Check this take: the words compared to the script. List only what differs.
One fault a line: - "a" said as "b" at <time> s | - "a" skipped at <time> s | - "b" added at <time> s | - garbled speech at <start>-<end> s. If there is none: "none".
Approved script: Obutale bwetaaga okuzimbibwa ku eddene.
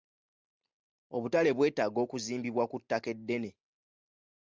- "ttaka" added at 2.8 s